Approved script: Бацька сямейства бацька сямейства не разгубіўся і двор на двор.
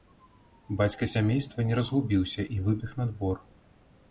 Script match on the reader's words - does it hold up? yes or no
no